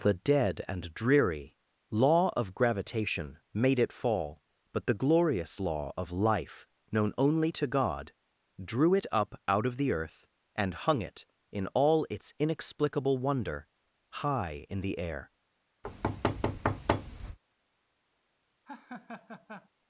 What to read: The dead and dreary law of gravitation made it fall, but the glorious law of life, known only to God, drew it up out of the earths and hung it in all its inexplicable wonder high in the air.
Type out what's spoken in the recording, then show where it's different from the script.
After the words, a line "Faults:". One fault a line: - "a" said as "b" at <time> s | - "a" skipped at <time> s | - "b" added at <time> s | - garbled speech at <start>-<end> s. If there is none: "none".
The dead and dreary law of gravitation made it fall, but the glorious law of life, known only to God, drew it up out of the earth and hung it in all its inexplicable wonder high in the air.
Faults:
- "earths" said as "earth" at 9.9 s